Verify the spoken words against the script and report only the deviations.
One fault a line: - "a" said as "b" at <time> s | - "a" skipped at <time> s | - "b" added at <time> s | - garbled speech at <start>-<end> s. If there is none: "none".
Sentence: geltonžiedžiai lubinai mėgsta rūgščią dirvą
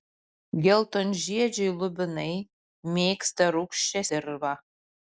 none